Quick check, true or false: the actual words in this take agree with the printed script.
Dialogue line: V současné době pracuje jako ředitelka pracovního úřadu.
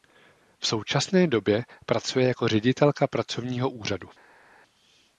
true